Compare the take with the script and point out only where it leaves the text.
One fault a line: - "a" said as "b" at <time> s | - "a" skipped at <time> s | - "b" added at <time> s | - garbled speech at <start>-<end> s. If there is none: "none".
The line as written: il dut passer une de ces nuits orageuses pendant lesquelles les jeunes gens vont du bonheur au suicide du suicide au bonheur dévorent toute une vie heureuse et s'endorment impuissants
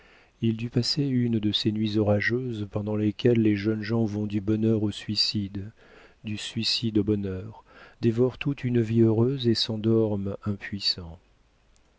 none